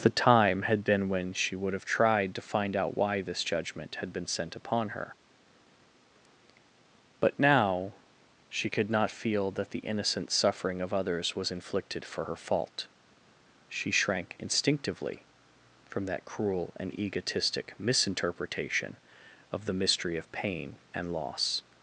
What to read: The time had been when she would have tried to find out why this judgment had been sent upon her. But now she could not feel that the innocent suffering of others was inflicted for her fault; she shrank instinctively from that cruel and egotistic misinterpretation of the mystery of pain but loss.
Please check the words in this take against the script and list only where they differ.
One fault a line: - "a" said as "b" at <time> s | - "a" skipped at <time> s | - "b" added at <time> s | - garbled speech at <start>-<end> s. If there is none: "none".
- "but" said as "and" at 20.9 s